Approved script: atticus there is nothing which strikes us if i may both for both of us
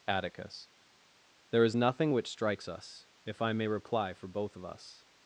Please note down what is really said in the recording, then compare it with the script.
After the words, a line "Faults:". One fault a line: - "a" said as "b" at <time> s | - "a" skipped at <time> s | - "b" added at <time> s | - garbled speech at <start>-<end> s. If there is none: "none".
atticus there is nothing which strikes us if i may reply for both of us
Faults:
- "both" said as "reply" at 3.7 s